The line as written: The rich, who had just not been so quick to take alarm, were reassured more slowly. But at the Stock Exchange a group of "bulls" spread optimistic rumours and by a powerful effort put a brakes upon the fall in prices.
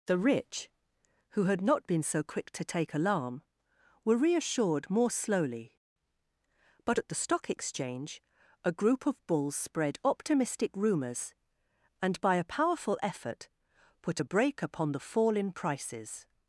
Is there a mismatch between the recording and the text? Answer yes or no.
yes